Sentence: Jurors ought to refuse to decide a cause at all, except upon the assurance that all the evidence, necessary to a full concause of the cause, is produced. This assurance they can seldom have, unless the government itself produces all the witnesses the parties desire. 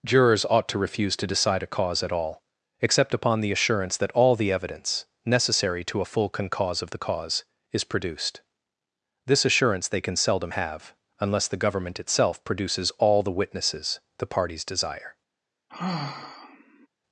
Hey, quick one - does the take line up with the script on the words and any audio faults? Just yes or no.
no